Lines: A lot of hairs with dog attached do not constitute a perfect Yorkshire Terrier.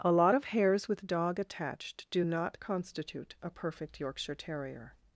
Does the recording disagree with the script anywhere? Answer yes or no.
no